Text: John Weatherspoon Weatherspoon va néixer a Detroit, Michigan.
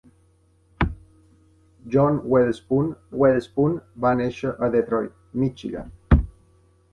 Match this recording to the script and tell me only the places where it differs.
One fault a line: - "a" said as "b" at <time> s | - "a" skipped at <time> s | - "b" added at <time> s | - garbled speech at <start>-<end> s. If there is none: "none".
none